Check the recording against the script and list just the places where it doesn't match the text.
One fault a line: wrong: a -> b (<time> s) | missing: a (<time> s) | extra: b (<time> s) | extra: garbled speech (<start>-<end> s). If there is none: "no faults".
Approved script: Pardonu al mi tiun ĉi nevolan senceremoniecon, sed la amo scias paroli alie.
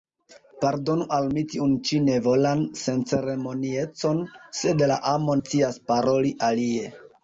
no faults